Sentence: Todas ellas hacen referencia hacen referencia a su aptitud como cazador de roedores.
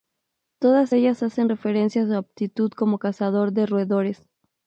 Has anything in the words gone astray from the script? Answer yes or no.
yes